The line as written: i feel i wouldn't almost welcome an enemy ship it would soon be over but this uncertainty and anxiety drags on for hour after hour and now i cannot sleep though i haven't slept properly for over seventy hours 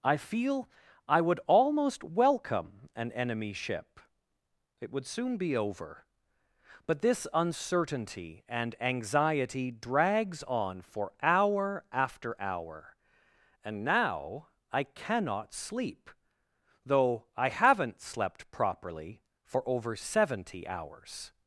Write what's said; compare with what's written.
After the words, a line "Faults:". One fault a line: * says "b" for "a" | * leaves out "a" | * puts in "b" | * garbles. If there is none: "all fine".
i feel i would almost welcome an enemy ship it would soon be over but this uncertainty and anxiety drags on for hour after hour and now i cannot sleep though i haven't slept properly for over seventy hours
Faults:
* says "would" for "wouldn't"